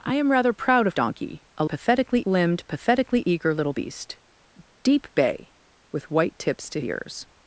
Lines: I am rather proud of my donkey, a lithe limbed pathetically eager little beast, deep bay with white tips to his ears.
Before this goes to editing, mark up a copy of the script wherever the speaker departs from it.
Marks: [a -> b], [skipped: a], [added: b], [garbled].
I am rather proud of [skipped: my] donkey, a [lithe -> pathetically] limbed pathetically eager little beast, deep bay with white tips to [skipped: his] ears.